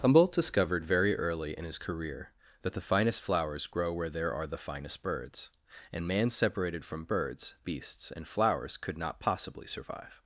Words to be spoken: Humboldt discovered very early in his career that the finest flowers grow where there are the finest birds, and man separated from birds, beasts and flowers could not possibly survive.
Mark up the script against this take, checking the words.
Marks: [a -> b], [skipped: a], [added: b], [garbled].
Humboldt discovered very early in his career that the finest flowers grow where there are the finest birds, and man separated from birds, beasts and flowers could not possibly survive.